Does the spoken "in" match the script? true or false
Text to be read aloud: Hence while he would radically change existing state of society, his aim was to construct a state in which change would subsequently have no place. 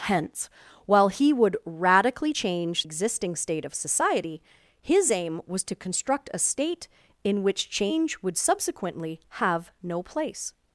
true